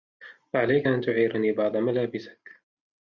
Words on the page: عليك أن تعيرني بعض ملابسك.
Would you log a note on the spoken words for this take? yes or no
no